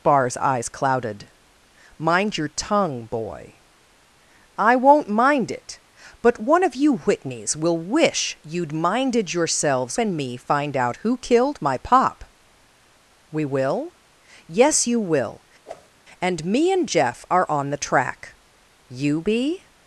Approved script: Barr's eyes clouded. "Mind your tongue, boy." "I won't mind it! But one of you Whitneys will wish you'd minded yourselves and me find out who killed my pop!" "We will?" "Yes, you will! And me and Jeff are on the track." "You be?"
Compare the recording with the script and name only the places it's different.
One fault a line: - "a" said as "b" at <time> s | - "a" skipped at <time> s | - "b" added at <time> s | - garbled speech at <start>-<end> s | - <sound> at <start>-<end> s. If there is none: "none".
- whoosh at 15.6-15.9 s